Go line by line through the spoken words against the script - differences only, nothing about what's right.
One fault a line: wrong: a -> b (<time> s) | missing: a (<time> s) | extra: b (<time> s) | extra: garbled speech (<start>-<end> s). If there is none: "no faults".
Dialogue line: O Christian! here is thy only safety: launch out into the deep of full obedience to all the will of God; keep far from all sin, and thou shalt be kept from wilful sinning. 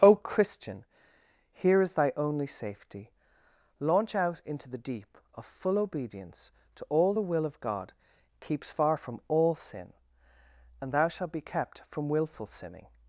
wrong: keep -> keeps (8.4 s)